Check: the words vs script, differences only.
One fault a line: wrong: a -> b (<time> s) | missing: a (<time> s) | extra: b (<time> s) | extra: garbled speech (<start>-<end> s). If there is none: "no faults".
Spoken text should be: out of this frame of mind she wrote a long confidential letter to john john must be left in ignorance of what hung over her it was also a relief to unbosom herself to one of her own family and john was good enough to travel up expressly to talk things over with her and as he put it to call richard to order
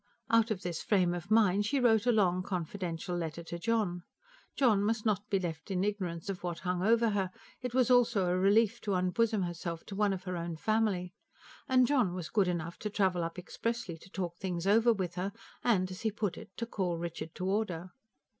extra: not (5.1 s)